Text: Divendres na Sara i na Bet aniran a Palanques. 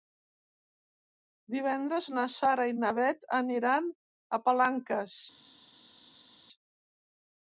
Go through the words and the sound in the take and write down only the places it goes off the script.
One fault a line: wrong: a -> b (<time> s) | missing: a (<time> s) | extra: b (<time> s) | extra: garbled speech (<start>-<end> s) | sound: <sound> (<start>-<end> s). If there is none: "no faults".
no faults